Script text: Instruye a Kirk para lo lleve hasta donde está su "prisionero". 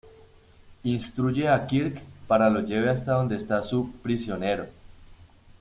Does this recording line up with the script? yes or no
yes